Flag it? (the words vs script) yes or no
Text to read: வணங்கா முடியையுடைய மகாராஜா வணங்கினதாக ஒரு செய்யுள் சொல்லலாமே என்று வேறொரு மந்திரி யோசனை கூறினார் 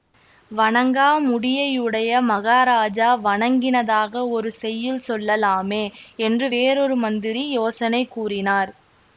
no